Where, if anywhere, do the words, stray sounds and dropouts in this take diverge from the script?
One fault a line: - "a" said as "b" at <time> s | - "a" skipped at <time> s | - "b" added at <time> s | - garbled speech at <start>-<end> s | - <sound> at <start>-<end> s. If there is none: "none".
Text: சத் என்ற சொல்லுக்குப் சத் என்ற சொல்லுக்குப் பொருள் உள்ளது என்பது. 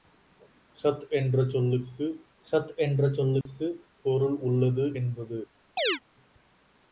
- dropout at 3.4-3.5 s
- chirp at 5.8-6.0 s